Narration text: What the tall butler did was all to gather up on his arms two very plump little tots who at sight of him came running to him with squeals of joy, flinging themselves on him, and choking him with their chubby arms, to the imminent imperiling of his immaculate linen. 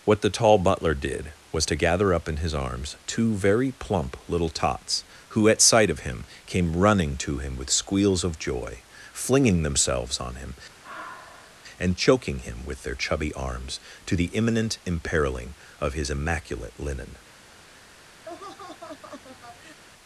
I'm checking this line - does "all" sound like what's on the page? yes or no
no